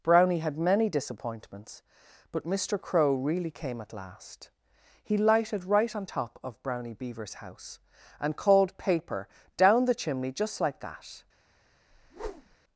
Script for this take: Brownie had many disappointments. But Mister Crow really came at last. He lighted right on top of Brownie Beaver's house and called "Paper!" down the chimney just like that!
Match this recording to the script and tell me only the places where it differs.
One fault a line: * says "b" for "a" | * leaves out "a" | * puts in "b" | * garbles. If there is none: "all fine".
all fine